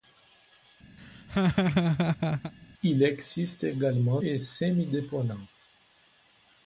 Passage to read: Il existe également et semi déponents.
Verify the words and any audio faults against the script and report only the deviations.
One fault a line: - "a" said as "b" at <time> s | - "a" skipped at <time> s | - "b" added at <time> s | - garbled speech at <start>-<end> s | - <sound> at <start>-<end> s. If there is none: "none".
- laugh at 1.0-2.5 s